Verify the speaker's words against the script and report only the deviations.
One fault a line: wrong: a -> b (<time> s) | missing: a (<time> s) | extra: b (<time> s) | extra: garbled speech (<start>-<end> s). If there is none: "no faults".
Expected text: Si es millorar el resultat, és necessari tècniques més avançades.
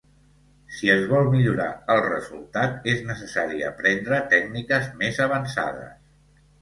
extra: vol (1.1 s)
extra: aprendre (3.7 s)